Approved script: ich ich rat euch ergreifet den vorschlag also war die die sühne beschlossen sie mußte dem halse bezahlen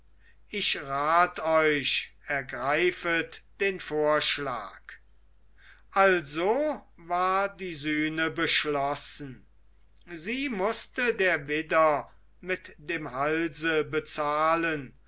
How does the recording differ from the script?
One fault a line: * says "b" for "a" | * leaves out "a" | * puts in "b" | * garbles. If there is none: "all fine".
* leaves out "ich"
* leaves out "die"
* puts in "der widder mit"